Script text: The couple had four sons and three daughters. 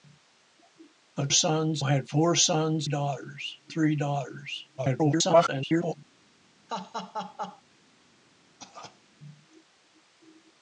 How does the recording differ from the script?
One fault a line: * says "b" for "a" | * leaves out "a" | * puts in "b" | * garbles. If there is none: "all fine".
* says "sons" for "couple"
* says "daughters" for "and"
* garbles